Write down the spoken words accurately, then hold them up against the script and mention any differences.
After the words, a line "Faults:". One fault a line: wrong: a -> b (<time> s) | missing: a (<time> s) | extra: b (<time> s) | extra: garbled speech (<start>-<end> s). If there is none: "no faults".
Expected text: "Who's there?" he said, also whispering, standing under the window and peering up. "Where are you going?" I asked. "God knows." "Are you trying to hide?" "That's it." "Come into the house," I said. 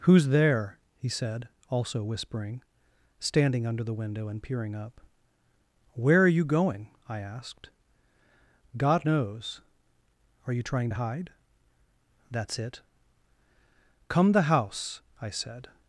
"Who's there?" he said, also whispering, standing under the window and peering up. "Where are you going?" I asked. "God knows." "Are you trying to hide?" "That's it." "Come the house," I said.
Faults:
missing: into (14.3 s)